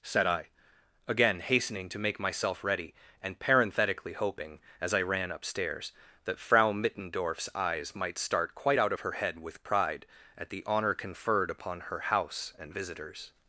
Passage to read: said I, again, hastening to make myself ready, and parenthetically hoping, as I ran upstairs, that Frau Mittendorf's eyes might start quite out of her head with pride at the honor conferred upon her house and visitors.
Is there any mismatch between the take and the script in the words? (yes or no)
no